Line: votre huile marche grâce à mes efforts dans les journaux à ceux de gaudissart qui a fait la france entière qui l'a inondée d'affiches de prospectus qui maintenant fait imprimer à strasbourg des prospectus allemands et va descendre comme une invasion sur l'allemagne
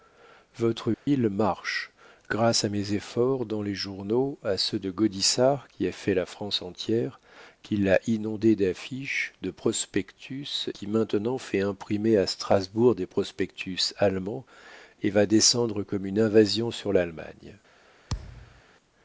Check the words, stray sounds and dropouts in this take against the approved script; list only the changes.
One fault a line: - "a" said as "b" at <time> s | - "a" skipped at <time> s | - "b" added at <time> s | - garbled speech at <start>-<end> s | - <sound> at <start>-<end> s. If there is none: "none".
- dropout at 0.9-1.1 s
- thud at 18.1-18.6 s